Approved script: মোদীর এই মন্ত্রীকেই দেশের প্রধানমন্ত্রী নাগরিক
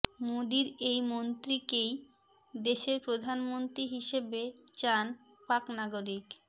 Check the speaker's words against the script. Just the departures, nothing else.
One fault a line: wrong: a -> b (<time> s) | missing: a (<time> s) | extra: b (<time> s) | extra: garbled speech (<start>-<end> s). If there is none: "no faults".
extra: হিসেবে চান পাক (3.9 s)